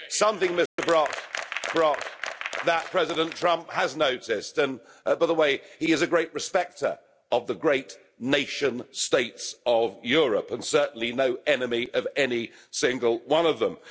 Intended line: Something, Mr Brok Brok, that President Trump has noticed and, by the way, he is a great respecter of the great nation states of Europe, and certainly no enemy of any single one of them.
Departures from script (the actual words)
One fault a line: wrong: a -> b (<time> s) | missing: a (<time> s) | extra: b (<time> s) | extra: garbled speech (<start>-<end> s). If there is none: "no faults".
no faults